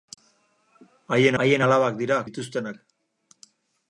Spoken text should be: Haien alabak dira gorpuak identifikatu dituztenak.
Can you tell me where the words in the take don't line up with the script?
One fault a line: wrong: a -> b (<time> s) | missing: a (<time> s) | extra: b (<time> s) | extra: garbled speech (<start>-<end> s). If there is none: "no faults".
extra: haien (1.4 s)
missing: gorpuak identifikatu (2.2 s)